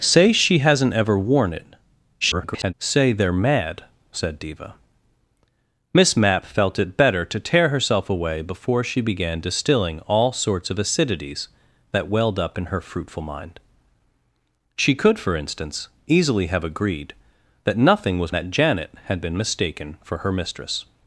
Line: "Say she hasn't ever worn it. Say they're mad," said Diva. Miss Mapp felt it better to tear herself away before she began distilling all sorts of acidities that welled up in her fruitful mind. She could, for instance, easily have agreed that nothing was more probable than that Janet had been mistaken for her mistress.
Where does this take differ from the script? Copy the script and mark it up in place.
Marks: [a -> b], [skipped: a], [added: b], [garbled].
"Say she hasn't ever worn it. [garbled] Say they're mad," said Diva. Miss Mapp felt it better to tear herself away before she began distilling all sorts of acidities that welled up in her fruitful mind. She could, for instance, easily have agreed that nothing was [skipped: more probable than] that Janet had been mistaken for her mistress.